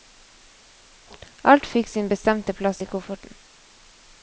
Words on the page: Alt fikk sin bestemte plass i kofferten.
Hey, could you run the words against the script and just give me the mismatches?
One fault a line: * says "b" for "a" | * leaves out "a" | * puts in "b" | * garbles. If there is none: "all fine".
all fine